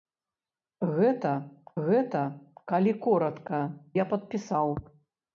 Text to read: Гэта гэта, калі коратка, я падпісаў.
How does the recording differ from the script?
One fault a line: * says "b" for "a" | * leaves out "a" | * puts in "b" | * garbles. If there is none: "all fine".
all fine